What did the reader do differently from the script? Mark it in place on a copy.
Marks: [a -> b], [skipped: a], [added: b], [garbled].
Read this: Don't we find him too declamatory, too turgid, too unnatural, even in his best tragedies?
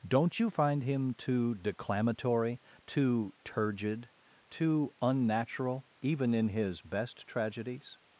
Don't [we -> you] find him too declamatory, too turgid, too unnatural, even in his best tragedies?